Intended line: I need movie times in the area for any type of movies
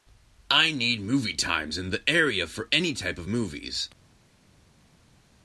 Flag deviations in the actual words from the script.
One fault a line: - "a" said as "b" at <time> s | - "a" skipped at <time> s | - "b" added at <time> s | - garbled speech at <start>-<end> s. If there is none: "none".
none